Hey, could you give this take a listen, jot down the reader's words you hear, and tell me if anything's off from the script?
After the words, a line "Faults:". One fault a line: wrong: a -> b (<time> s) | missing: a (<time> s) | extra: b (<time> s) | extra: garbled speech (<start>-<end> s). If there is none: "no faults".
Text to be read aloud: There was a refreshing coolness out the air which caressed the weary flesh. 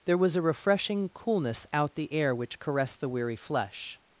There was a refreshing coolness out the air which caressed the weary flesh.
Faults:
no faults